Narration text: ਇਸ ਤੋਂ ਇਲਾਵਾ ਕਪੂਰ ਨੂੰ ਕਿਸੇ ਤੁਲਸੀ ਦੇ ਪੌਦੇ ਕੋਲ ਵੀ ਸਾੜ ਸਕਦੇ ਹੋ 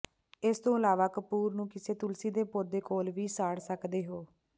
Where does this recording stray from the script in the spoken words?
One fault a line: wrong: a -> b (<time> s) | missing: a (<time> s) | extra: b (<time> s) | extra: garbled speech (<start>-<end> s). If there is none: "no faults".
no faults